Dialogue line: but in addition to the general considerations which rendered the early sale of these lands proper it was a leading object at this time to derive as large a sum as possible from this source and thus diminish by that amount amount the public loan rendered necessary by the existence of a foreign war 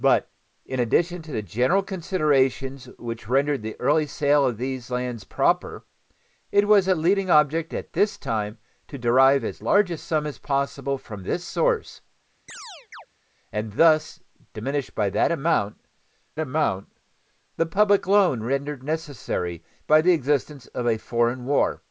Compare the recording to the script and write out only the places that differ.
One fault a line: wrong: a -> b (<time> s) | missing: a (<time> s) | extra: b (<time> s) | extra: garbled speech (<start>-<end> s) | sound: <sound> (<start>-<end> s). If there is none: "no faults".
sound: chirp (12.5-13.1 s)